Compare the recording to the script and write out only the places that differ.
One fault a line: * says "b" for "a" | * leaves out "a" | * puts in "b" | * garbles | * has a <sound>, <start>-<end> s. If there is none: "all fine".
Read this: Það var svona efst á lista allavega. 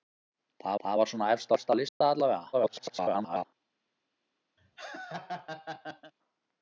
* puts in "það"
* puts in "efst"
* has a dropout, 1.9-2.0 s
* garbles
* has a laugh, 4.6-6.1 s